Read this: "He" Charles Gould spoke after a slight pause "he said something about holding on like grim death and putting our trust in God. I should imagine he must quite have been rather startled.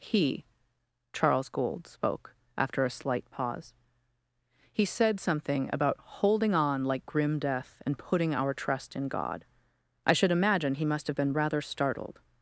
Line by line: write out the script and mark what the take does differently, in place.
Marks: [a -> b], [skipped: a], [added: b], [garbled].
"He" Charles Gould spoke after a slight pause "he said something about holding on like grim death and putting our trust in God. I should imagine he must [skipped: quite] have been rather startled.